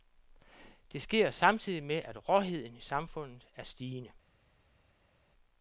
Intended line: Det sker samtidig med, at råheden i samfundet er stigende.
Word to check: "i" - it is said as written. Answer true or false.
false